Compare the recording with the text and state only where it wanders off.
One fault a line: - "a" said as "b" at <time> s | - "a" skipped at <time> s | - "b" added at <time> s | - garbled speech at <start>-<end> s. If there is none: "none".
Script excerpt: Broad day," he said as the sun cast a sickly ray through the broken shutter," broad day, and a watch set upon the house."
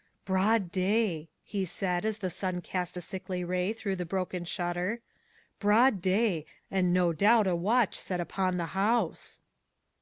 - "no doubt" added at 6.9 s